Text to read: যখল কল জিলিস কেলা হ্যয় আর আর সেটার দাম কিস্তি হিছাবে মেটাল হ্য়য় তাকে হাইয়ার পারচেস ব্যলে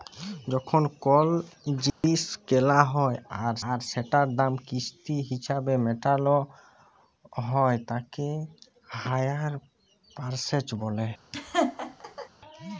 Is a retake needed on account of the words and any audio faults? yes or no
yes